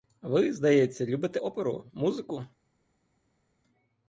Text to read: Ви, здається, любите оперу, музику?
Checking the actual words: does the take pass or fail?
pass